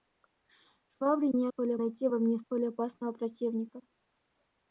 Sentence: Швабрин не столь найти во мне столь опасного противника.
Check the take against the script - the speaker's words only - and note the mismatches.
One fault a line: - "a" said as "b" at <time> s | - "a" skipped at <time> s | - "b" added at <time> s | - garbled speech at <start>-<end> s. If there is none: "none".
none